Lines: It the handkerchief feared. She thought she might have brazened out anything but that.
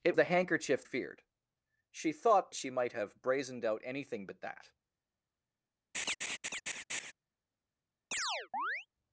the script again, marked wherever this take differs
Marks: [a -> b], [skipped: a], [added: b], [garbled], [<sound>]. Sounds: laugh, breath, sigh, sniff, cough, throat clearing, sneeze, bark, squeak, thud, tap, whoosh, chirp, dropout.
It the handkerchief feared. She thought she might have brazened out anything but that. [laugh] [chirp]